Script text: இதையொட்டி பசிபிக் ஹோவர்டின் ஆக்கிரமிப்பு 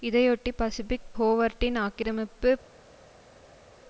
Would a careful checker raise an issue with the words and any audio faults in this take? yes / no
no